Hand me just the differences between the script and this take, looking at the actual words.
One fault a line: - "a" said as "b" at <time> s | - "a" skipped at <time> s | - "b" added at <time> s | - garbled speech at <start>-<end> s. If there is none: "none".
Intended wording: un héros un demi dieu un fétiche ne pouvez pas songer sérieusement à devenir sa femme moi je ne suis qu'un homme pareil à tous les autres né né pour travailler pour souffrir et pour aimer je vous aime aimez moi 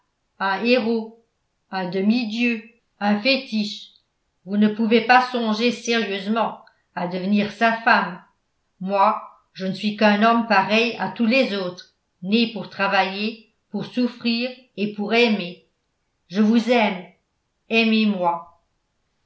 - "vous" added at 4.4 s
- "né" skipped at 12.5 s